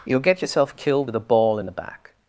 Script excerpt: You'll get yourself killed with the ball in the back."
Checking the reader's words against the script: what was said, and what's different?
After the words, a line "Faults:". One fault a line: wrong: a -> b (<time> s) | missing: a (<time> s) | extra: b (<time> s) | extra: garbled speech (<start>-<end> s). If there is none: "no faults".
You'll get yourself killed with a ball in the back."
Faults:
wrong: the -> a (1.1 s)